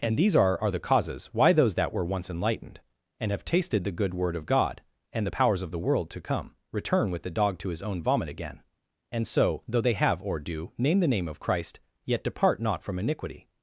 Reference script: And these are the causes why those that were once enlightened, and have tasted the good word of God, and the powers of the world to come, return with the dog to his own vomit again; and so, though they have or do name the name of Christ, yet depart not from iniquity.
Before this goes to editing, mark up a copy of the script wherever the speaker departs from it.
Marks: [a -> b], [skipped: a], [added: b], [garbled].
And these are [added: are] the causes why those that were once enlightened, and have tasted the good word of God, and the powers of the world to come, return with the dog to his own vomit again; and so, though they have or do name the name of Christ, yet depart not from iniquity.